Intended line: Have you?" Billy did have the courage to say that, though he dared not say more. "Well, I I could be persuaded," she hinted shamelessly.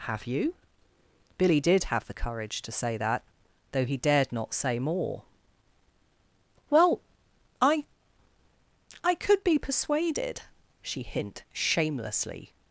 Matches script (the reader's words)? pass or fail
fail